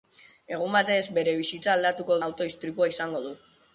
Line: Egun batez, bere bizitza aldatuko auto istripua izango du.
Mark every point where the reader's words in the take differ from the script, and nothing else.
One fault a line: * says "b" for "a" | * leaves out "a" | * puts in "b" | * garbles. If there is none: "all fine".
all fine